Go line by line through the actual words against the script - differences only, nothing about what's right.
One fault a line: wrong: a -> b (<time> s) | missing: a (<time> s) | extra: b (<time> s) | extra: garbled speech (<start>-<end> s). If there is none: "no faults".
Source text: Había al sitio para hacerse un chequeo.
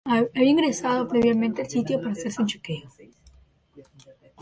extra: ingresado previamente (0.5 s)